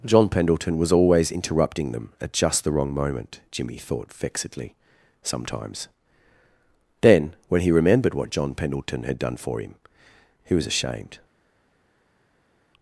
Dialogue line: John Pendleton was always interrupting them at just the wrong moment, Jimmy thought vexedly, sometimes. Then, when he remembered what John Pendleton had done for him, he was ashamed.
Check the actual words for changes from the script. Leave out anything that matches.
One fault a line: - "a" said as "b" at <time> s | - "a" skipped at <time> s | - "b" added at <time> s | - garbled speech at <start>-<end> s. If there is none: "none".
none